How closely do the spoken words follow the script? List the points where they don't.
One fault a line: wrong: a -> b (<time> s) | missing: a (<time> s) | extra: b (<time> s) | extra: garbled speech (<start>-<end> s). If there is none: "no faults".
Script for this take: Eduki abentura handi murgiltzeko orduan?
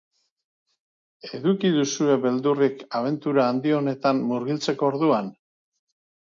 extra: duzue beldurrik (1.8 s)
extra: honetan (3.8 s)